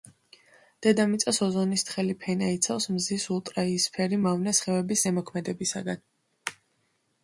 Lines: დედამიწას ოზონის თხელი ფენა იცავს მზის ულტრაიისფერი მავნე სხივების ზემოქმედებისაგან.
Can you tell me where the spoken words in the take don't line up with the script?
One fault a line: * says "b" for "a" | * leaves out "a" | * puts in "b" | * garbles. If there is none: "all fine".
all fine